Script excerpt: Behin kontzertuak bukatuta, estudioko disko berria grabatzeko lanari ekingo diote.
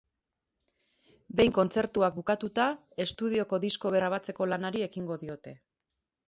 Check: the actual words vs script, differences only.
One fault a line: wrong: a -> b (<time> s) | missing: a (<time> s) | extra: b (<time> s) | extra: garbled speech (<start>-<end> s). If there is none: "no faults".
missing: berria (3.9 s)